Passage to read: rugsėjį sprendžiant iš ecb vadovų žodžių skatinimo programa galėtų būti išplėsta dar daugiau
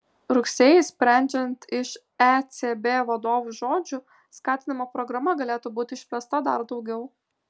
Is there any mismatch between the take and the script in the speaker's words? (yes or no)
no